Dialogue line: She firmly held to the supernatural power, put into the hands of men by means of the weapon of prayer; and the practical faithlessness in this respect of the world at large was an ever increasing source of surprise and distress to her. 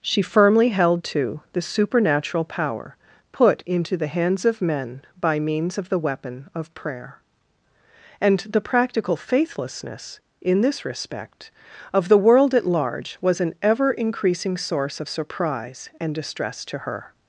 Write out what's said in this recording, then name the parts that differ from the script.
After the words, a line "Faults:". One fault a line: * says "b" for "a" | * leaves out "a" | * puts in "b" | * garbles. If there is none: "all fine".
She firmly held to the supernatural power, put into the hands of men by means of the weapon of prayer; and the practical faithlessness in this respect of the world at large was an ever increasing source of surprise and distress to her.
Faults:
all fine